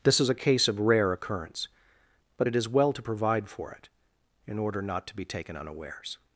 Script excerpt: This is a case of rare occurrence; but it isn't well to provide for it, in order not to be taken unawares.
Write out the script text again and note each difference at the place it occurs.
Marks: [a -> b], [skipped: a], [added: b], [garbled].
This is a case of rare occurrence; but it [isn't -> is] well to provide for it, in order not to be taken unawares.